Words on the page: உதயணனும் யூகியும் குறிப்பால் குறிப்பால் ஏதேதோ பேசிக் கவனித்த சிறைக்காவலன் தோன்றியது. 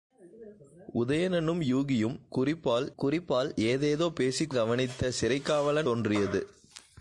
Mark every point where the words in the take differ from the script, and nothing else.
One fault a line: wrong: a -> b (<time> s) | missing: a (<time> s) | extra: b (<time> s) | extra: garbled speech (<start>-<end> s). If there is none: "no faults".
no faults